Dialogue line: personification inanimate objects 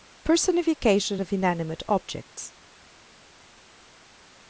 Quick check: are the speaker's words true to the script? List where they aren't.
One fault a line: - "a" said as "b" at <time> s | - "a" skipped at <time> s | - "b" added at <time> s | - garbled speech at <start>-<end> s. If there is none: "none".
- "of" added at 1.2 s